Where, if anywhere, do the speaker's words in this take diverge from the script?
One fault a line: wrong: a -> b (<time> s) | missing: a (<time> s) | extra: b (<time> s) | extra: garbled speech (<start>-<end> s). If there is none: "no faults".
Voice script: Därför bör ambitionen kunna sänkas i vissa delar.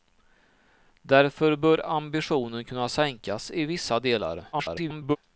extra: garbled speech (4.5-5.2 s)